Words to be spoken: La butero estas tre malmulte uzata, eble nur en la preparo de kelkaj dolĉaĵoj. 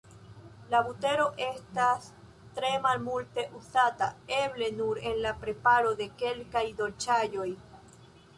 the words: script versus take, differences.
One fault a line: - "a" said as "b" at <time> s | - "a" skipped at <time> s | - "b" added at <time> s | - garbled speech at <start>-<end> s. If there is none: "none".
none